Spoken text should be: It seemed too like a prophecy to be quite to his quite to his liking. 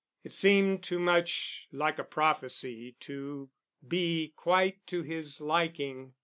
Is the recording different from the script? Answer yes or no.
yes